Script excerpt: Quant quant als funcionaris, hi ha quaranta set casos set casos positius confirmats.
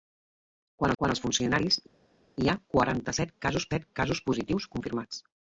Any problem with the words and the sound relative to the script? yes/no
no